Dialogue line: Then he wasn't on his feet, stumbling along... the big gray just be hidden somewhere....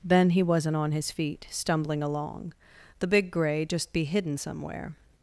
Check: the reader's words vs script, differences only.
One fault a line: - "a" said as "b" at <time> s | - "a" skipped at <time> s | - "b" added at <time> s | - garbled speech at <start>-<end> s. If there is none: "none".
none